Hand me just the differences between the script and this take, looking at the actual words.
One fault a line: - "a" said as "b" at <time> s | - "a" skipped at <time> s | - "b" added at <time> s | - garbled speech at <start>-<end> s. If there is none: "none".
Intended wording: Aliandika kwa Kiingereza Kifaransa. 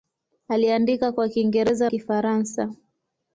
none